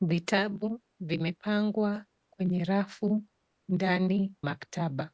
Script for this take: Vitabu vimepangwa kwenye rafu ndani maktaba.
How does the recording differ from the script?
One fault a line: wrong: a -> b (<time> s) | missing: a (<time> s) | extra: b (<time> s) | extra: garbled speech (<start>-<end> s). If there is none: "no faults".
no faults